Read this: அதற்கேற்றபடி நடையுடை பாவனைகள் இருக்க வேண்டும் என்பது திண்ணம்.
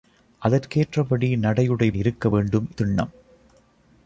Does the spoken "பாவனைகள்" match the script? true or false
false